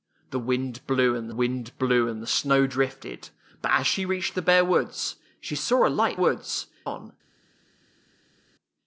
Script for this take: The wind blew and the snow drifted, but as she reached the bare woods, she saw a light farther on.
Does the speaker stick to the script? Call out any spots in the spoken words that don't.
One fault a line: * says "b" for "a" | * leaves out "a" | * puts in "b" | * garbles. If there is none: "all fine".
* puts in "wind blew and"
* says "woods" for "farther"